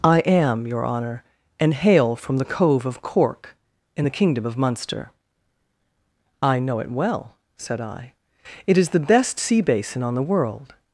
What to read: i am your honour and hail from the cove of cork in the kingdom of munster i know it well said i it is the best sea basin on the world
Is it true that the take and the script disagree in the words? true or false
false